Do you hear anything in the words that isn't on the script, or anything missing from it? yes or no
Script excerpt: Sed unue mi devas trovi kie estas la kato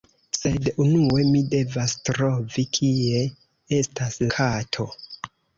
yes